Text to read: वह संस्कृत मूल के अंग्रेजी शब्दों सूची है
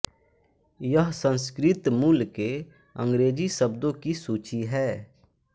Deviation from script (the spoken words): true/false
true